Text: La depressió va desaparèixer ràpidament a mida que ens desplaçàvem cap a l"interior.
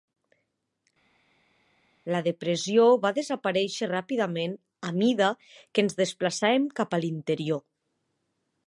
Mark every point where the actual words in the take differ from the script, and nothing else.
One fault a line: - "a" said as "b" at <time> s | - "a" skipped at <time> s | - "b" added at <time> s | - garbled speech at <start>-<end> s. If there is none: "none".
none